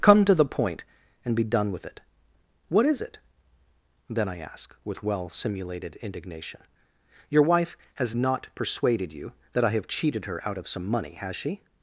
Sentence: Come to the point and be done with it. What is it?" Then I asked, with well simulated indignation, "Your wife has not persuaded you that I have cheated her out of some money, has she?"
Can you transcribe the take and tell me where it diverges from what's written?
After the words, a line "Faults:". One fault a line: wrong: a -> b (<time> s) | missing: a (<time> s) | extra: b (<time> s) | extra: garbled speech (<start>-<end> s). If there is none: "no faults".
Come to the point and be done with it. What is it?" Then I ask, with well simulated indignation, "Your wife has not persuaded you that I have cheated her out of some money, has she?"
Faults:
wrong: asked -> ask (4.4 s)